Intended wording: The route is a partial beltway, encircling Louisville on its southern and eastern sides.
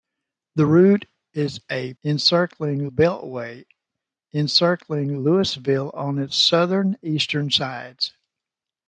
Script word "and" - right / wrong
wrong